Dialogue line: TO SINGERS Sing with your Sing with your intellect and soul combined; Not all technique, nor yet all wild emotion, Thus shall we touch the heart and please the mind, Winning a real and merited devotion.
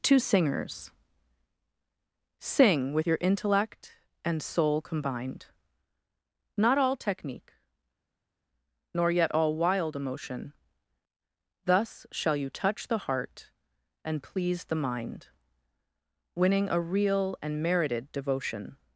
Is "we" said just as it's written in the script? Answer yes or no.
no